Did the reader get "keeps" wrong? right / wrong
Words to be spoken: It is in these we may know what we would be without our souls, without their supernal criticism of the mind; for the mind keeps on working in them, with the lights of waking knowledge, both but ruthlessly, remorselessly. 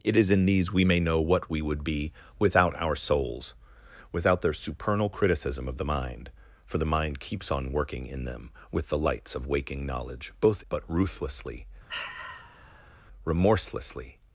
right